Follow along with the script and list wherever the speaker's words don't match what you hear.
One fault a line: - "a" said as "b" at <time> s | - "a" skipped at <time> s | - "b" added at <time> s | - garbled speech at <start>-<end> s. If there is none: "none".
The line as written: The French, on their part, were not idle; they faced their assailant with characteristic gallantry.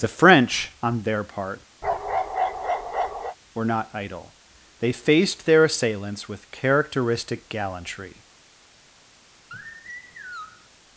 - "assailant" said as "assailants" at 5.7 s